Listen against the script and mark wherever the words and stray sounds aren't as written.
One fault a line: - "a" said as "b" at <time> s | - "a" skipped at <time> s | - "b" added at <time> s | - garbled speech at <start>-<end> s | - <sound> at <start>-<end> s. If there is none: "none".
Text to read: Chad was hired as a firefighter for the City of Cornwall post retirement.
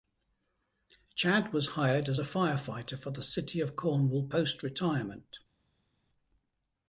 none